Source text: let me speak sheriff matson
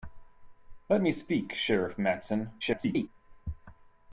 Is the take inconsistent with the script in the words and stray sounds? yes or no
yes